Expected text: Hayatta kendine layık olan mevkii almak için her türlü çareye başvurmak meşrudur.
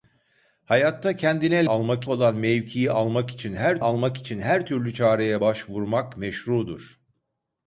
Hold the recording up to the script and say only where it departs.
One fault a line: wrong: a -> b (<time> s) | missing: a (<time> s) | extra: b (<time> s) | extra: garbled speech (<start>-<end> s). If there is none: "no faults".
wrong: layık -> almak (1.7 s)
extra: almak için her (3.8 s)